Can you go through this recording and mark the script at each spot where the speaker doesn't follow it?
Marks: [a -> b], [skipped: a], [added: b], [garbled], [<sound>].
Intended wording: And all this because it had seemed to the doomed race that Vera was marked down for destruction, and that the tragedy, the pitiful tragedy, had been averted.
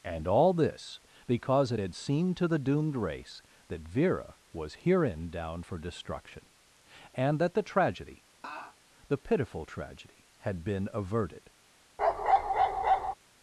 And all this because it had seemed to the doomed race that Vera was [marked -> herein] down for destruction, and that the tragedy, [laugh] the pitiful tragedy, had been averted. [bark]